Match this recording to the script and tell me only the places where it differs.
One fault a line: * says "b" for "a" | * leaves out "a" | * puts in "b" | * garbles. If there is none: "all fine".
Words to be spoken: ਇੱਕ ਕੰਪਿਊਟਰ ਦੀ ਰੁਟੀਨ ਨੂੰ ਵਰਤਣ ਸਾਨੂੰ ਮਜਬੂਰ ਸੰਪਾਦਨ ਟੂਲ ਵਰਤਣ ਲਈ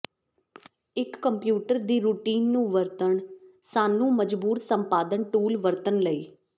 all fine